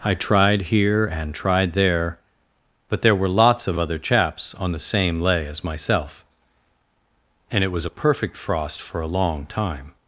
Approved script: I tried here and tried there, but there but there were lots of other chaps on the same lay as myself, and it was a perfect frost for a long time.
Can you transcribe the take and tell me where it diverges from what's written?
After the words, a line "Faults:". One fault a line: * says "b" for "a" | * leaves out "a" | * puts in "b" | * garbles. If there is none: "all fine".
I tried here and tried there, but there were lots of other chaps on the same lay as myself, and it was a perfect frost for a long time.
Faults:
* leaves out "but there"